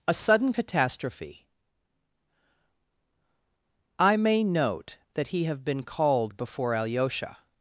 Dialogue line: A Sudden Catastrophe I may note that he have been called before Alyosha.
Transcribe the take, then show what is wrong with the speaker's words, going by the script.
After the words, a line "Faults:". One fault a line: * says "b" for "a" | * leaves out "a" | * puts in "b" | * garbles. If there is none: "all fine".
A Sudden Catastrophe I may note that he have been called before Alyosha.
Faults:
all fine